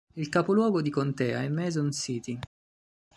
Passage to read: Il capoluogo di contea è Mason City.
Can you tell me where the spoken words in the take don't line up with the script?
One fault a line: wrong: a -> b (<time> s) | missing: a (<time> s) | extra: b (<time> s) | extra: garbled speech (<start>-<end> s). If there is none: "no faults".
no faults